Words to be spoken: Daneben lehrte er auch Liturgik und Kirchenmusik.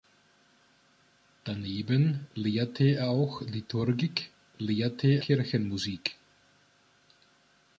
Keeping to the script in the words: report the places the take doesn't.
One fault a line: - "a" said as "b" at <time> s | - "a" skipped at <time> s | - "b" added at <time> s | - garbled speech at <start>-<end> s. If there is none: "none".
- "und" said as "lehrte" at 4.6 s